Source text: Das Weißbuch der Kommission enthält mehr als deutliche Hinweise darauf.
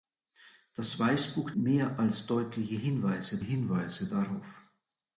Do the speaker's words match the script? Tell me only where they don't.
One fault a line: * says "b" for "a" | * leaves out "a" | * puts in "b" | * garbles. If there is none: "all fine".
* leaves out "der Kommission enthält"
* puts in "Hinweise"